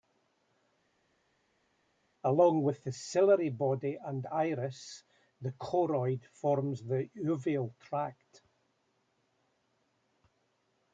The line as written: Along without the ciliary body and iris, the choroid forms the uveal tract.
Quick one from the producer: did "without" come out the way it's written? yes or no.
no